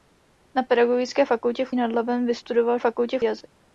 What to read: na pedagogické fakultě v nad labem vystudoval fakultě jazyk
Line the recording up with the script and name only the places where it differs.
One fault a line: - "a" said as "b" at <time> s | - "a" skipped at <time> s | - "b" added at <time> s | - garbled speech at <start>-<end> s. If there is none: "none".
none